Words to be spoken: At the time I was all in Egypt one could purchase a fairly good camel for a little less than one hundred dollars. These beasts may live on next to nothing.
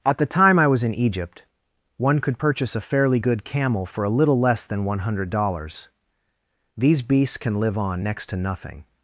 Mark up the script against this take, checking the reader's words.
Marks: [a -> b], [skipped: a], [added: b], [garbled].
At the time I was [skipped: all] in Egypt one could purchase a fairly good camel for a little less than one hundred dollars. These beasts [may -> can] live on next to nothing.